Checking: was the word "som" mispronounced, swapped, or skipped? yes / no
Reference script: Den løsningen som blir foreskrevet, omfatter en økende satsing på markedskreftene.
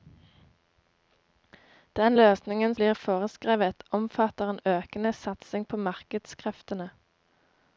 yes